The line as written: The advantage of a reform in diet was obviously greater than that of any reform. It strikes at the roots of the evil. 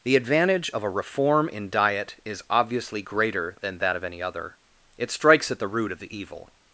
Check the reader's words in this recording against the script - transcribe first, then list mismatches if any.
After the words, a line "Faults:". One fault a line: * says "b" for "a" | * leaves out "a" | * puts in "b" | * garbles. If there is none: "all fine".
The advantage of a reform in diet is obviously greater than that of any other. It strikes at the root of the evil.
Faults:
* says "is" for "was"
* says "other" for "reform"
* says "root" for "roots"